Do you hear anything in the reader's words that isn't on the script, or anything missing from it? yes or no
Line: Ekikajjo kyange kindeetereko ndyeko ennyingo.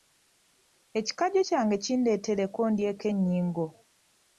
no